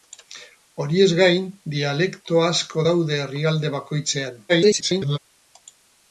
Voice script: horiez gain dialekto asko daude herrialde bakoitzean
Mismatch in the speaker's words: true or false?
true